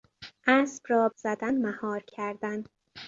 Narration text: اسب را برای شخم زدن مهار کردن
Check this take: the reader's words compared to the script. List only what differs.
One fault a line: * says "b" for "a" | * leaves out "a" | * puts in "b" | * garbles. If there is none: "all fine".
* leaves out "برای شخم"